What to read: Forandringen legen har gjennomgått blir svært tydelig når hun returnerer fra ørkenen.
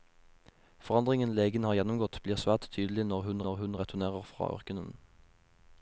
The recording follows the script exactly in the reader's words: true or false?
false